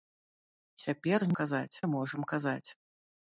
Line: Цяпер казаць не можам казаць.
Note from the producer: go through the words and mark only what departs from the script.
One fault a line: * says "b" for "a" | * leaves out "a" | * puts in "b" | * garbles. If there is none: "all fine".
all fine